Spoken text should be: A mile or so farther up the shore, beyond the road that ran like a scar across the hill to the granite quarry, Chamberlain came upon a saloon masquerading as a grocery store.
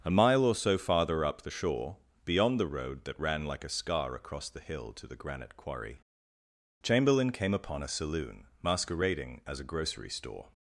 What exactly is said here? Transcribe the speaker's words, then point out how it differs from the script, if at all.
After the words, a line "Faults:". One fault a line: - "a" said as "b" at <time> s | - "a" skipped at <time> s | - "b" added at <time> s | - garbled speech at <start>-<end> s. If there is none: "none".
A mile or so farther up the shore, beyond the road that ran like a scar across the hill to the granite quarry, Chamberlain came upon a saloon masquerading as a grocery store.
Faults:
none